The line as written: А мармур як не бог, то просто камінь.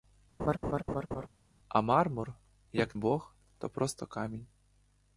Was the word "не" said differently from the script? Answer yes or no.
yes